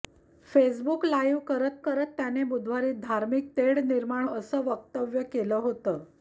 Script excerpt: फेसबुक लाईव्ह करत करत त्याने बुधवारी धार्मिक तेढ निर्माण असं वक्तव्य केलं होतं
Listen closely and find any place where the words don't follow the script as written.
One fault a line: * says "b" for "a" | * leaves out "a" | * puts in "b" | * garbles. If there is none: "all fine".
all fine